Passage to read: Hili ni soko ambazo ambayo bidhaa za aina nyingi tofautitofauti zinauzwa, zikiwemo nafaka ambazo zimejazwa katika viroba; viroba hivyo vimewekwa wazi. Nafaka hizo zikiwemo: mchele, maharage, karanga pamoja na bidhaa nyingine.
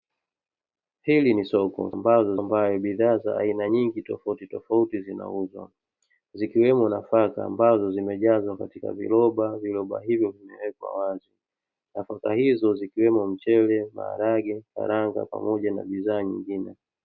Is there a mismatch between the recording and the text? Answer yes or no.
no